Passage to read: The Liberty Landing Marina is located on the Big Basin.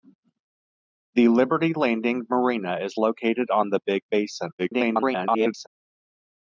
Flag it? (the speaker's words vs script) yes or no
yes